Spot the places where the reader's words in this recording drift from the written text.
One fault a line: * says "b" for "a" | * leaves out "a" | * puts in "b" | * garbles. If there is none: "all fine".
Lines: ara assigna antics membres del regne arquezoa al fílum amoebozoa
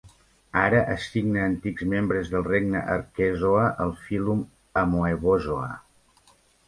all fine